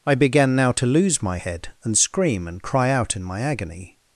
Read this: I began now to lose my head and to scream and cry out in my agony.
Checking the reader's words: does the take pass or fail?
fail